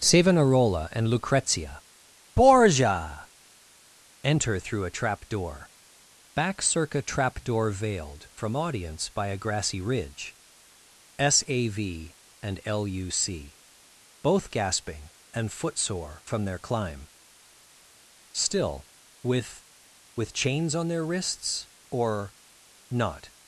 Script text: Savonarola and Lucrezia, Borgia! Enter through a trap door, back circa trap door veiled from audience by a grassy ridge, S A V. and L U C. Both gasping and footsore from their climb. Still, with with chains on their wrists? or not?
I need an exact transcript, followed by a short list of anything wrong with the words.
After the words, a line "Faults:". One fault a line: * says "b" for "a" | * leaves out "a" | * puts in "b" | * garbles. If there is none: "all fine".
Savonarola and Lucrezia, Borgia! Enter through a trap door, back circa trap door veiled from audience by a grassy ridge, S A V. and L U C. Both gasping and footsore from their climb. Still, with with chains on their wrists? or not?
Faults:
all fine